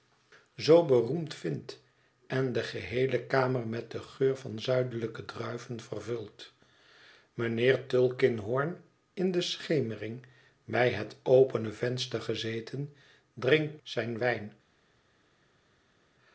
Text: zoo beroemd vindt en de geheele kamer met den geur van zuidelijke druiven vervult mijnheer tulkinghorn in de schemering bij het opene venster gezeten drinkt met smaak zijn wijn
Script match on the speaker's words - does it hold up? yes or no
no